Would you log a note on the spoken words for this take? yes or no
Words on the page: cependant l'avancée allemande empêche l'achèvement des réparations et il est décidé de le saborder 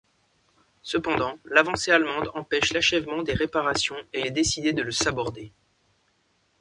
yes